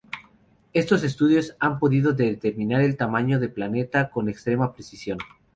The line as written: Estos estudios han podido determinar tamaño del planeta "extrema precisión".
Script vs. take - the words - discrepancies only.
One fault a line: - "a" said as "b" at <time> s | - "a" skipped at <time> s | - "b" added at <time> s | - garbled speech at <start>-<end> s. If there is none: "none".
- "el" added at 2.8 s
- "con" added at 4.1 s